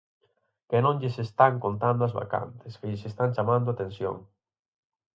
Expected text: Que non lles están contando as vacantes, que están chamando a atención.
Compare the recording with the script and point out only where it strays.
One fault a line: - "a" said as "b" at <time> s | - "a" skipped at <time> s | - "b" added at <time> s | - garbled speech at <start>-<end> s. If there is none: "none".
- "lles" added at 2.9 s